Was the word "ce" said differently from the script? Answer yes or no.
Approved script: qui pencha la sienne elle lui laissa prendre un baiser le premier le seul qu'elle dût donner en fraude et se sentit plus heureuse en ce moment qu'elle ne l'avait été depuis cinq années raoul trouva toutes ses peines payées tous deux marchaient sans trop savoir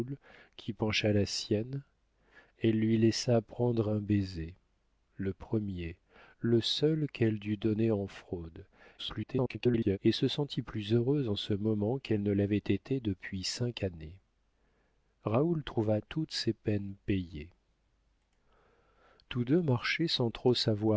no